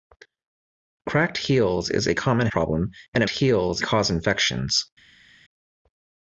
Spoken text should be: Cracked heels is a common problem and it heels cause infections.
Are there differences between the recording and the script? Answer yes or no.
no